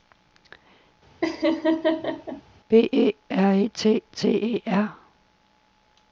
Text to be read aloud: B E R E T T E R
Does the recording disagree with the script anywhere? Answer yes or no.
no